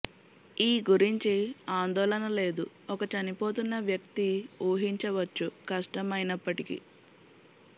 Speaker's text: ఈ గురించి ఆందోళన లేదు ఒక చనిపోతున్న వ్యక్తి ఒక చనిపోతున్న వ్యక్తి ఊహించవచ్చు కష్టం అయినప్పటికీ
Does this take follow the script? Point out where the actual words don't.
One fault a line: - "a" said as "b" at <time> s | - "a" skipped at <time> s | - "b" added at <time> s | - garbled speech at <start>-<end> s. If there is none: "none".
- "ఒక చనిపోతున్న వ్యక్తి" skipped at 4.3 s